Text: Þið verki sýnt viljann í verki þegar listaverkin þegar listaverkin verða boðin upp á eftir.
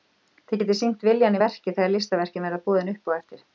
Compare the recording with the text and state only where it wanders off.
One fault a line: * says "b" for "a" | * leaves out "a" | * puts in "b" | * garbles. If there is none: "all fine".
* says "getið" for "verki"
* leaves out "þegar listaverkin"